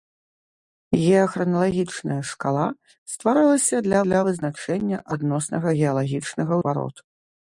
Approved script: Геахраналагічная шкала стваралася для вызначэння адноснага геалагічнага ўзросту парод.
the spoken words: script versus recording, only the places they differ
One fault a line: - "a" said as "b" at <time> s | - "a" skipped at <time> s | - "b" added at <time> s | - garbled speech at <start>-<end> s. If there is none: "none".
- "для" added at 4.1 s
- "ўзросту" skipped at 6.5 s